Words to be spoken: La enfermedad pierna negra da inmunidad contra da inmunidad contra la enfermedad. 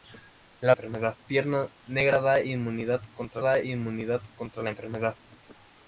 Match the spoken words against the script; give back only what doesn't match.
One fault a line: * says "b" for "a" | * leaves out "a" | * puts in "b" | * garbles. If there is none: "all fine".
all fine